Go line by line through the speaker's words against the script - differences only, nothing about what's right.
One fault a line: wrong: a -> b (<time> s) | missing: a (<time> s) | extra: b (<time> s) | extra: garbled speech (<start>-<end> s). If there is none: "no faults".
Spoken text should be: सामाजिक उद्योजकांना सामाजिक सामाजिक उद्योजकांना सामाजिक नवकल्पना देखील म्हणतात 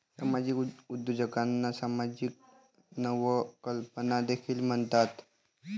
missing: सामाजिक उद्योजकांना सामाजिक (2.3 s)